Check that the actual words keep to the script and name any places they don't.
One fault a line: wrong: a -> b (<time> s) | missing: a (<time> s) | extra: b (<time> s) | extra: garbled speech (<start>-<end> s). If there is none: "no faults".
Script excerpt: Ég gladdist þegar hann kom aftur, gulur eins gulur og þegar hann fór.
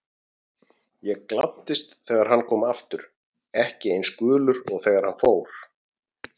wrong: gulur -> ekki (3.7 s)